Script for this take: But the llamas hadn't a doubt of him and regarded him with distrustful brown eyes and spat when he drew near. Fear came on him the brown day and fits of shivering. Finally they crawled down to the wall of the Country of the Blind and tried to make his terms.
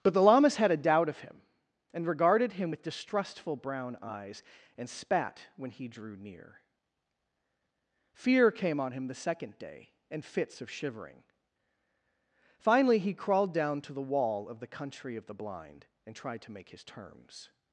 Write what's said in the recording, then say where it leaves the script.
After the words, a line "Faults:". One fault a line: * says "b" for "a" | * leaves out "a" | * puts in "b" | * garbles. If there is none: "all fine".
But the llamas had a doubt of him and regarded him with distrustful brown eyes and spat when he drew near. Fear came on him the second day and fits of shivering. Finally he crawled down to the wall of the Country of the Blind and tried to make his terms.
Faults:
* says "had" for "hadn't"
* says "second" for "brown"
* says "he" for "they"